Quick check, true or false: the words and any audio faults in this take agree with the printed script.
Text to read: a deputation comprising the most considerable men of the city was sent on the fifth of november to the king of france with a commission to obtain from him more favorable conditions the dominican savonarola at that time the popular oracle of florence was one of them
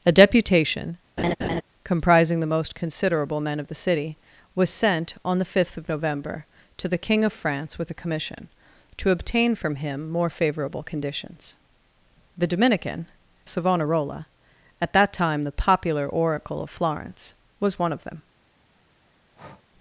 false